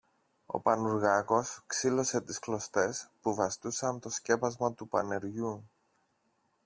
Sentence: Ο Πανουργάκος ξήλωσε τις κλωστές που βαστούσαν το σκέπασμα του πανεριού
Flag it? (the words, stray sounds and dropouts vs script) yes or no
no